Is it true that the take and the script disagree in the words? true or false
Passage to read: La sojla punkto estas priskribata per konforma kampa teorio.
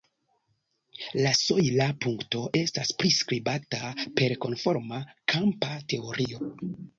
false